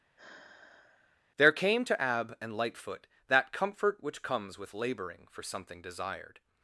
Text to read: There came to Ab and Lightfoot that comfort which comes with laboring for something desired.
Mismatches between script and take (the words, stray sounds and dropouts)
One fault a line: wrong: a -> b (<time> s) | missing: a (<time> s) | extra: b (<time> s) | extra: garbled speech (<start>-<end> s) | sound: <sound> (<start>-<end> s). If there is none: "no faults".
sound: sigh (0.2-1.2 s)